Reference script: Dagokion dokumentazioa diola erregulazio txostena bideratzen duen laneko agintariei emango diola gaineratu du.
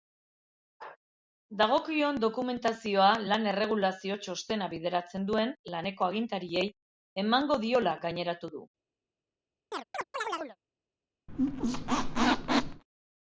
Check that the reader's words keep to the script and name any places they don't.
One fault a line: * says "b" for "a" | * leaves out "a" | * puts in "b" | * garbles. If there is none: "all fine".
* says "lan" for "diola"